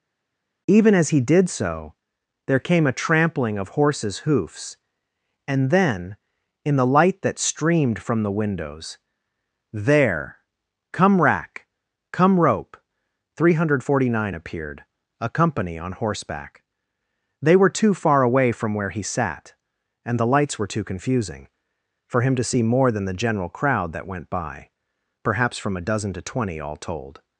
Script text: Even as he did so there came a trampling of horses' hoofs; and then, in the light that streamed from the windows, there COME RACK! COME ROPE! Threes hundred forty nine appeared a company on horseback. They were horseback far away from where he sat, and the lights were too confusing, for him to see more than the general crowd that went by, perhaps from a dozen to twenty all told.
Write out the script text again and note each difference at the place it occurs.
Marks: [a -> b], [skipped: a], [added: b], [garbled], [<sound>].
Even as he did so there came a trampling of horses' hoofs; and then, in the light that streamed from the windows, there COME RACK! COME ROPE! [Threes -> Three] hundred forty nine appeared a company on horseback. They were [horseback -> too] far away from where he sat, and the lights were too confusing, for him to see more than the general crowd that went by, perhaps from a dozen to twenty all told.